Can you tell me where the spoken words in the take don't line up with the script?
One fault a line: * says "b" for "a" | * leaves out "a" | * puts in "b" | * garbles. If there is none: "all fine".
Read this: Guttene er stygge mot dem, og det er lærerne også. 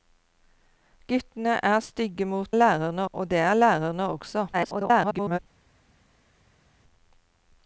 * says "lærerne" for "dem"
* garbles